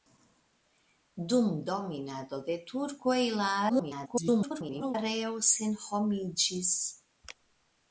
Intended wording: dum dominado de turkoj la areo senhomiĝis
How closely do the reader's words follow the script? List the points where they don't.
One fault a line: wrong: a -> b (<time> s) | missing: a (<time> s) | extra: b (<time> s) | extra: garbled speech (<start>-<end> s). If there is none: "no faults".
extra: garbled speech (3.7-5.0 s)